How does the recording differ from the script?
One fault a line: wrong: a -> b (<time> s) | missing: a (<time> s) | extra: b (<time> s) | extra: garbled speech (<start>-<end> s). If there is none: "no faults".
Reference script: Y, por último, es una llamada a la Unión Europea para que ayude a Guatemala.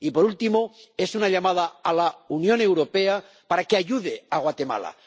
no faults